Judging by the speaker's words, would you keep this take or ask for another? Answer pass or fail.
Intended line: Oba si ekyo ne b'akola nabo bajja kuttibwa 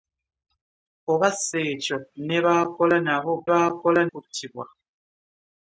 fail